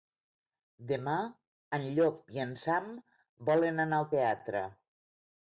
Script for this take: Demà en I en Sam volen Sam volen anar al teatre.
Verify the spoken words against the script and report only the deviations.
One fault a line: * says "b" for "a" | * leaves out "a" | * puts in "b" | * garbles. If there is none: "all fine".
* puts in "Llop"
* leaves out "Sam volen"